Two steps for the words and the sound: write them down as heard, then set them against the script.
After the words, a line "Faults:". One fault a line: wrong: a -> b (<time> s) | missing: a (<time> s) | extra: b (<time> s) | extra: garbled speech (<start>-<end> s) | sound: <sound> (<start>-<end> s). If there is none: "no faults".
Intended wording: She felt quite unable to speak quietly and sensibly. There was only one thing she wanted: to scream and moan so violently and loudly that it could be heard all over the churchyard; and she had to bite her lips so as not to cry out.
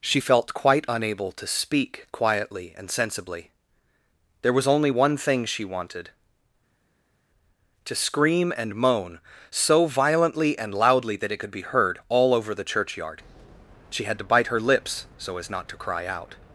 She felt quite unable to speak quietly and sensibly. There was only one thing she wanted: to scream and moan so violently and loudly that it could be heard all over the churchyard; she had to bite her lips so as not to cry out.
Faults:
missing: and (13.2 s)